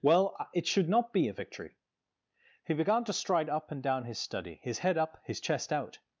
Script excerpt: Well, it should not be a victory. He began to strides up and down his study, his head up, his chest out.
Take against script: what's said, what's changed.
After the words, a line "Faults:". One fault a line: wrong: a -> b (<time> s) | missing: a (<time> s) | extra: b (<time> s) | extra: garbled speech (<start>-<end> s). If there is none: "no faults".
Well, it should not be a victory. He began to stride up and down his study, his head up, his chest out.
Faults:
wrong: strides -> stride (3.1 s)